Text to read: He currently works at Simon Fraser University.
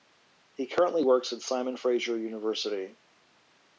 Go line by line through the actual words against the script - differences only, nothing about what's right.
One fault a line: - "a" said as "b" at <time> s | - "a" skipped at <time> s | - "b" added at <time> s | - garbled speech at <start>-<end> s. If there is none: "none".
none